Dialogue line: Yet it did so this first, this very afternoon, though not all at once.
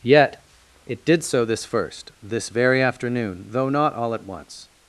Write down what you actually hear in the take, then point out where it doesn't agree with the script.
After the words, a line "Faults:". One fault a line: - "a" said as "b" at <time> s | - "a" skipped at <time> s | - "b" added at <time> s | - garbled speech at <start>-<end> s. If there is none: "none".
Yet it did so this first, this very afternoon, though not all at once.
Faults:
none